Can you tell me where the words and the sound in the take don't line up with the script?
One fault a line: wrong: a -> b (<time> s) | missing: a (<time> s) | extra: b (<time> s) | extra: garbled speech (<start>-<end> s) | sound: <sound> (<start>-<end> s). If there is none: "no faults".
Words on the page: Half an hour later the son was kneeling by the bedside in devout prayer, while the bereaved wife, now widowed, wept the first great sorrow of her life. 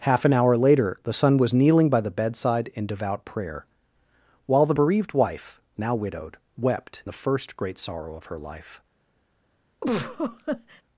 sound: laugh (9.8-10.8 s)